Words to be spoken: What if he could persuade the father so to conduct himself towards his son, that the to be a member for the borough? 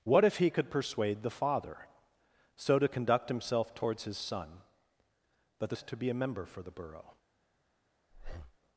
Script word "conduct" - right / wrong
right